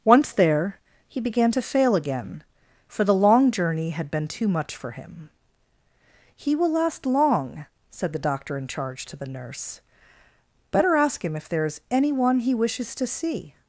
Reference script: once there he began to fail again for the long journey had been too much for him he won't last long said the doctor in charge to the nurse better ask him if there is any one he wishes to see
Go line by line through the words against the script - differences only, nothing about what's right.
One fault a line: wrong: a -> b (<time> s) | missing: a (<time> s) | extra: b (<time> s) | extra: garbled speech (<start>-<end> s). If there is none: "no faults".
wrong: won't -> will (6.6 s)